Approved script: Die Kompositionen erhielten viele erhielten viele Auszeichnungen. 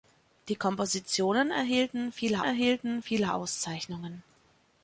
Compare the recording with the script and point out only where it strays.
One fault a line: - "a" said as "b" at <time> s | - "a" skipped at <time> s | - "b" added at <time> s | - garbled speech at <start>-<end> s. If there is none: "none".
none